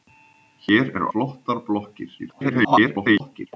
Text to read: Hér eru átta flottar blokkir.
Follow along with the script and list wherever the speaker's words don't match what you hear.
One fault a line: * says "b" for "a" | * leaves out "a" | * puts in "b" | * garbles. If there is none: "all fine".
* leaves out "átta"
* garbles